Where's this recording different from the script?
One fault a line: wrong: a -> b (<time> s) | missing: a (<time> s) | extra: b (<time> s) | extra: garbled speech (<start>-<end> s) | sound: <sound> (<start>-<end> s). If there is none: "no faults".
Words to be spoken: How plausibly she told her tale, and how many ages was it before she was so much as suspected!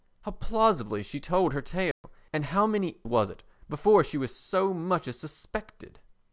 sound: dropout (1.9-2.0 s)
missing: ages (3.0 s)